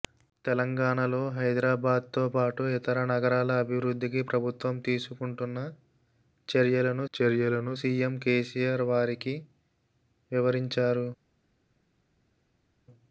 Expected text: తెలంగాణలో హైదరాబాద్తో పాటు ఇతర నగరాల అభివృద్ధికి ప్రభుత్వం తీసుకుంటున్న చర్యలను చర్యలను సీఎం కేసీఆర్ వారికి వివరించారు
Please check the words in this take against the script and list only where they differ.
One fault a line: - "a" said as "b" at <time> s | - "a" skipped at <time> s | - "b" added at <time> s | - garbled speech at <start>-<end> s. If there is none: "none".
none